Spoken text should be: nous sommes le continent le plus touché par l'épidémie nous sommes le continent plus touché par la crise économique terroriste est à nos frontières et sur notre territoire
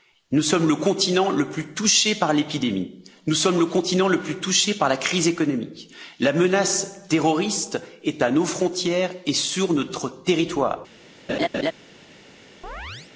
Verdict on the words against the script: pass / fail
fail